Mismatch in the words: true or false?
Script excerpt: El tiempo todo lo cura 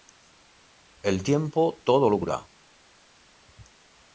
false